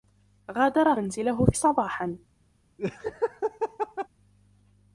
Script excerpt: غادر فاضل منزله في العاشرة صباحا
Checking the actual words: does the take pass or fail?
fail